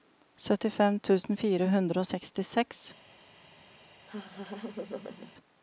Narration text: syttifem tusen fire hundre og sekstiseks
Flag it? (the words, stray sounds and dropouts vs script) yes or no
yes